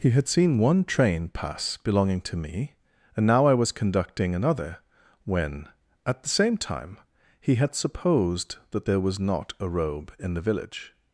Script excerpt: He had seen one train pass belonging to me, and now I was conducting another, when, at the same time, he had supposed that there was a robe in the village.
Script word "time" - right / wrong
right